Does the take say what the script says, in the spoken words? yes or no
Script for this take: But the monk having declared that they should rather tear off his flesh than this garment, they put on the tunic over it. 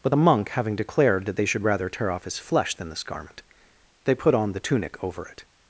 yes